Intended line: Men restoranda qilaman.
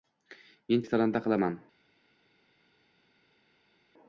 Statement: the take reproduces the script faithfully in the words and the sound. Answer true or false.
true